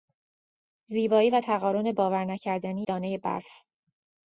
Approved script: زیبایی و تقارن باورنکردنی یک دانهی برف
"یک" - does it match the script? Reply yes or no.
no